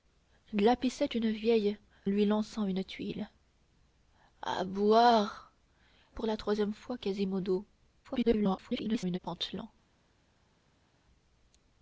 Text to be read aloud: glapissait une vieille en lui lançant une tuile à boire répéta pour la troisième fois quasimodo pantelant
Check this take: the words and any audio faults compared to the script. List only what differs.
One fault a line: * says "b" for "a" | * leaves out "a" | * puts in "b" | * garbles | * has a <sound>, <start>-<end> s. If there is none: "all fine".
* leaves out "en"
* leaves out "répéta"
* garbles